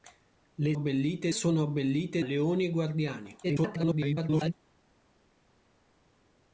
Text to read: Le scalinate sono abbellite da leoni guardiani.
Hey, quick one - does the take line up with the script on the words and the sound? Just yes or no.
no